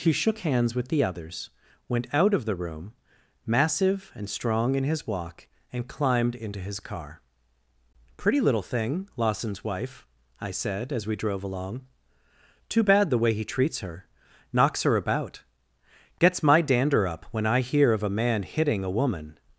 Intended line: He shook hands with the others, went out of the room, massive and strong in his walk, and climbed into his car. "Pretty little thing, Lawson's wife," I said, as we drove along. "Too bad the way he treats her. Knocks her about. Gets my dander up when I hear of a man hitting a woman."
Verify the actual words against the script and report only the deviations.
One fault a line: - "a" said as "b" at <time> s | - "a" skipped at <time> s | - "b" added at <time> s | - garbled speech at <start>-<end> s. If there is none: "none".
none